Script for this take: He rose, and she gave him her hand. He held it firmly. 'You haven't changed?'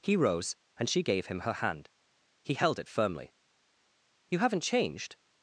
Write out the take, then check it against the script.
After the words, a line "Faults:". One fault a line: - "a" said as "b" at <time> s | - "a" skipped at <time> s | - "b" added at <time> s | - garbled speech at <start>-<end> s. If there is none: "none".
He rose, and she gave him her hand. He held it firmly. 'You haven't changed?'
Faults:
none